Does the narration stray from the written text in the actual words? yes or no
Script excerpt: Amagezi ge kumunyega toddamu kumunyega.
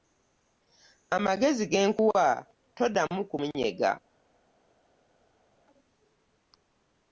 yes